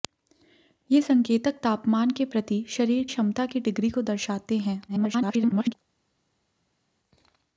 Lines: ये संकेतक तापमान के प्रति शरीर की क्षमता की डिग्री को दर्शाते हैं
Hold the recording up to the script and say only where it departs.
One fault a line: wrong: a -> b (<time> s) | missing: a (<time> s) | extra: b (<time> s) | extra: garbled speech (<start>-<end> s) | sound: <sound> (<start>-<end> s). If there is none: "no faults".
missing: की (3.0 s)
extra: garbled speech (4.9-5.7 s)